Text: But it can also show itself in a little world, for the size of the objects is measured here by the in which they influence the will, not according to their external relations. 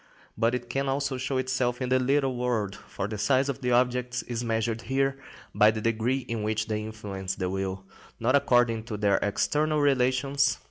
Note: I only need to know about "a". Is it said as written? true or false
false